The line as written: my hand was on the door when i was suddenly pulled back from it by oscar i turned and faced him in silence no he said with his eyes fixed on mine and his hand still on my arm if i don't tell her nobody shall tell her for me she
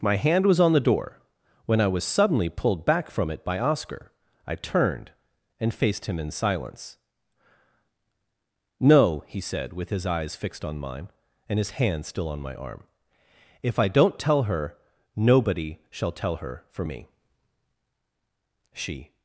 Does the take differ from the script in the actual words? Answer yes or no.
no